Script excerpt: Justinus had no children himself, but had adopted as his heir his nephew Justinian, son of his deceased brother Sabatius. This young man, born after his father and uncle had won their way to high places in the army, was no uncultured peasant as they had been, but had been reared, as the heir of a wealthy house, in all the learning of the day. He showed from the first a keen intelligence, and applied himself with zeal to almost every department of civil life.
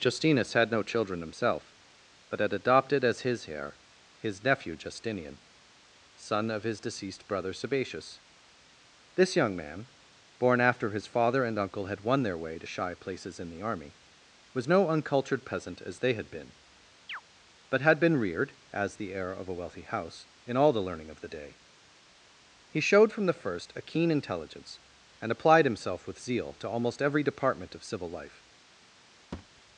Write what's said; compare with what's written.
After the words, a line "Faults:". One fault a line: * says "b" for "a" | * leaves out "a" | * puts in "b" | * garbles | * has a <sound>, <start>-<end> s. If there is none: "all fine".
Justinus had no children himself, but had adopted as his heir his nephew Justinian, son of his deceased brother Sabatius. This young man, born after his father and uncle had won their way to shy places in the army, was no uncultured peasant as they had been, but had been reared, as the heir of a wealthy house, in all the learning of the day. He showed from the first a keen intelligence, and applied himself with zeal to almost every department of civil life.
Faults:
* says "shy" for "high"
* has a chirp, 17.1-17.2 s
* has a thud, 29.3-29.6 s